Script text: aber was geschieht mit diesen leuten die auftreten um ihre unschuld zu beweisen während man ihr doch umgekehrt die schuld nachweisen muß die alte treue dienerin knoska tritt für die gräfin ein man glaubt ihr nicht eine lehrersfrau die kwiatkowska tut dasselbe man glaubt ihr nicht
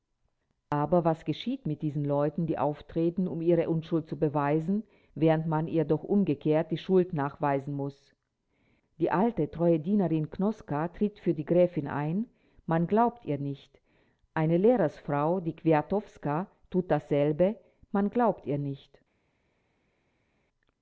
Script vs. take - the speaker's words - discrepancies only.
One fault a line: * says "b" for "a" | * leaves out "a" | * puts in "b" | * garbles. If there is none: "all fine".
all fine